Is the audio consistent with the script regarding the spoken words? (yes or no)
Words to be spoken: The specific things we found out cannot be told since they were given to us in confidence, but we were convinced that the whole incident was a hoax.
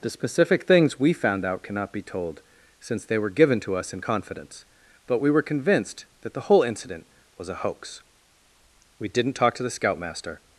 no